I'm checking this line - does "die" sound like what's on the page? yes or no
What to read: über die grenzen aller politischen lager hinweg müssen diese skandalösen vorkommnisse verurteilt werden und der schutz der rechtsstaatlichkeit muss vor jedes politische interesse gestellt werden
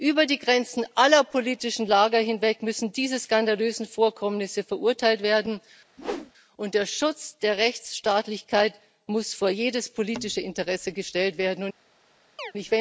yes